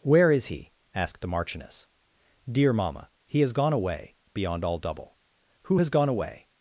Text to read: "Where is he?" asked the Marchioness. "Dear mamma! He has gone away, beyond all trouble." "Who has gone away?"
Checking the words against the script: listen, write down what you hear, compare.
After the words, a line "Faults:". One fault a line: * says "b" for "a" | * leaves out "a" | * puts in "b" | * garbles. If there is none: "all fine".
"Where is he?" asked the Marchioness. "Dear mamma! He has gone away, beyond all double." "Who has gone away?"
Faults:
* says "double" for "trouble"